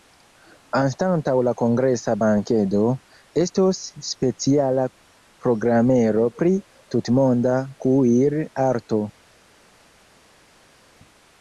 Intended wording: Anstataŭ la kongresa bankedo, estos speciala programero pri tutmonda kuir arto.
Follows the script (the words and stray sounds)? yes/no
yes